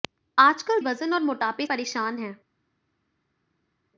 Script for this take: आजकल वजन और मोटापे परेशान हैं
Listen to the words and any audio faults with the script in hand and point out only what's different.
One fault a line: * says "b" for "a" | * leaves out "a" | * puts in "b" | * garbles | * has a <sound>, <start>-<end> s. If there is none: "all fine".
all fine